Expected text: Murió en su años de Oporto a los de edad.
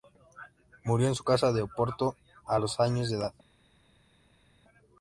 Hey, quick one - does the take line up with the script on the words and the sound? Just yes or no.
no